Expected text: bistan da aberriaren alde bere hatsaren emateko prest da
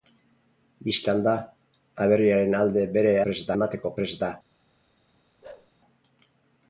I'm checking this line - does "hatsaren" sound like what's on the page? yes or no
no